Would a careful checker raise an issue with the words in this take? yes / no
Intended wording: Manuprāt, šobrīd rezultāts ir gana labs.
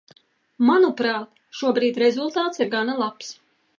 no